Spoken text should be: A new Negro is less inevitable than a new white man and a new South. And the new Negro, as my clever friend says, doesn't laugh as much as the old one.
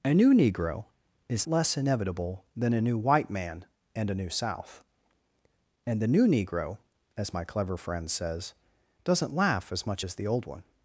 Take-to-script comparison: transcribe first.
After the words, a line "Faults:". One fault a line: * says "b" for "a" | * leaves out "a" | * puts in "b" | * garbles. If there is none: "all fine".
A new Negro is less inevitable than a new white man and a new South. And the new Negro, as my clever friend says, doesn't laugh as much as the old one.
Faults:
all fine